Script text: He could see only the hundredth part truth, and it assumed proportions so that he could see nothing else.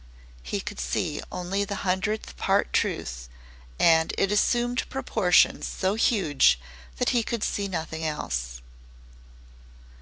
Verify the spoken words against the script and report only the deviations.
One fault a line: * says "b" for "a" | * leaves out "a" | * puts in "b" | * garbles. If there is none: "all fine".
* puts in "huge"